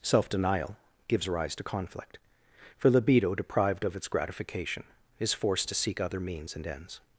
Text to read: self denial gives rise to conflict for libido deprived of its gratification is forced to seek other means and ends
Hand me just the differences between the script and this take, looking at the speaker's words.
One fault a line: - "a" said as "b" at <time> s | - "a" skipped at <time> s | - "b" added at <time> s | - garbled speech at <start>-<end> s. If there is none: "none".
none